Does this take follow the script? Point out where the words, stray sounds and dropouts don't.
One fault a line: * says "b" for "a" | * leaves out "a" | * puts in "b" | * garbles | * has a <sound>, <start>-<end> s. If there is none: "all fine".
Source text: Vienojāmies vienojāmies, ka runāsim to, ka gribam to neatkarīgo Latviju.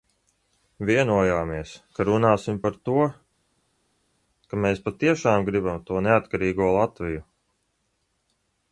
* leaves out "vienojāmies"
* puts in "par"
* puts in "mēs patiešām"